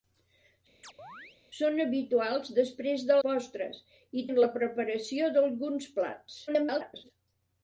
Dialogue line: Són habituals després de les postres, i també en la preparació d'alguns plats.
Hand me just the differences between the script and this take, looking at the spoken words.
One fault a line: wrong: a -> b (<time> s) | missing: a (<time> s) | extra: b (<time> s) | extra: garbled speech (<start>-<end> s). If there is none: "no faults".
missing: les (3.2 s)
missing: també (4.2 s)
extra: garbled speech (6.5-7.1 s)